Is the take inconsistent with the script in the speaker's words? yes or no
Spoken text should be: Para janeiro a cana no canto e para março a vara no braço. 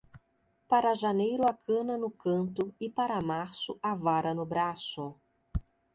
no